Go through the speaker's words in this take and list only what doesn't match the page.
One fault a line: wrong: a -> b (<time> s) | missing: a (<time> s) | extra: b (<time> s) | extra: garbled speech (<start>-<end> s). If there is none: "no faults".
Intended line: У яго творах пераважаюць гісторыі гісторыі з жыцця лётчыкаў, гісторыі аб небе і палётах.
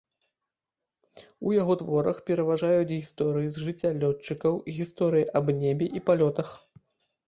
missing: гісторыі (3.5 s)